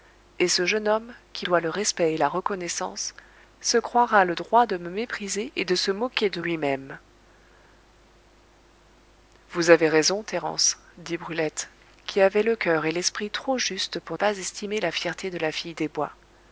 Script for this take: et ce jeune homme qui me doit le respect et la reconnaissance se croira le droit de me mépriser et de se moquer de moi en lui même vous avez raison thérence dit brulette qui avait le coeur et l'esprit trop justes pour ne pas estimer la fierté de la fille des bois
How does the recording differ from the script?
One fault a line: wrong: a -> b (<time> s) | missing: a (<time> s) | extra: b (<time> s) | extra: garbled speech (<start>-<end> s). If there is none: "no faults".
missing: me (1.4 s)
missing: moi en (6.4 s)
missing: ne (14.2 s)